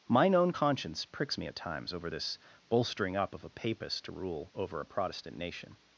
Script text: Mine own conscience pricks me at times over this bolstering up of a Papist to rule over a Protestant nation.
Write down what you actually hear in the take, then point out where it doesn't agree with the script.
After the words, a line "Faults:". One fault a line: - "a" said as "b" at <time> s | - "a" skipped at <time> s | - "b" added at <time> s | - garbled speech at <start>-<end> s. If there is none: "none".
Mine own conscience pricks me at times over this bolstering up of a Papist to rule over a Protestant nation.
Faults:
none